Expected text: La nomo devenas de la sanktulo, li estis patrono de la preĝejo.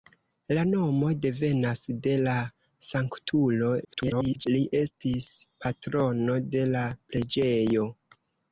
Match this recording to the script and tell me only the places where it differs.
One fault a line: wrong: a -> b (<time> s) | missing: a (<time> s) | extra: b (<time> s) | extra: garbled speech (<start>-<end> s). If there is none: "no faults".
extra: garbled speech (3.8-4.5 s)